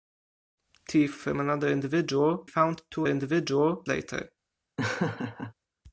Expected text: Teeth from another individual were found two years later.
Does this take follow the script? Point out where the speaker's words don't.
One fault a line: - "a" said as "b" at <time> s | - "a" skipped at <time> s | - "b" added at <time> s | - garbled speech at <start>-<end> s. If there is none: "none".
- "were" skipped at 2.4 s
- "years" said as "individual" at 3.1 s